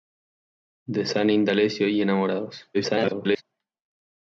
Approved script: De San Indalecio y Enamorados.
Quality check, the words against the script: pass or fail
fail